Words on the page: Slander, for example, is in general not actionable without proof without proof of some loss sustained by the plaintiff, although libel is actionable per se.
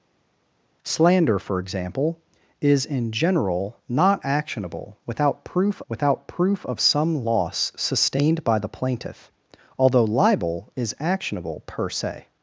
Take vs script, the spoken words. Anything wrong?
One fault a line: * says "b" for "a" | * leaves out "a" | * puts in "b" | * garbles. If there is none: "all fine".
all fine